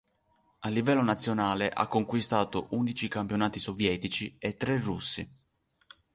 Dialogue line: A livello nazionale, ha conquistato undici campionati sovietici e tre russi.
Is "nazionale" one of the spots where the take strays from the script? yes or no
no